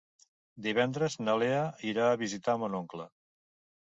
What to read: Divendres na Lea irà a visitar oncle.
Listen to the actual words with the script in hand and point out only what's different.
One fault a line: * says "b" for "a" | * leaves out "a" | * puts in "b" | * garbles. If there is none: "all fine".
* puts in "mon"